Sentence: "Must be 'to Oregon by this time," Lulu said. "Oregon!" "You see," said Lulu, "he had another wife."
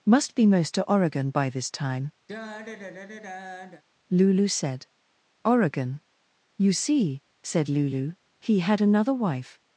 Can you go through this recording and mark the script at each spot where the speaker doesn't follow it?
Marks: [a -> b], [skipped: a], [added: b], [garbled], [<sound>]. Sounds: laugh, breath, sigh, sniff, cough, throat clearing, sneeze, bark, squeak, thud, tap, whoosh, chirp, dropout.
"Must be [added: most] 'to Oregon by this time," [sigh] Lulu said. "Oregon!" "You see," said Lulu, "he had another wife."